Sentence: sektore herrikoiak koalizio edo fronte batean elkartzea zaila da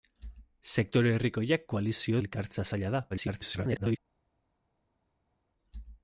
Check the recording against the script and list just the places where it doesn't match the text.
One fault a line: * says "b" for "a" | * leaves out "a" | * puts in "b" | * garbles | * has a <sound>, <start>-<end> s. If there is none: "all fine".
* leaves out "edo fronte batean"
* garbles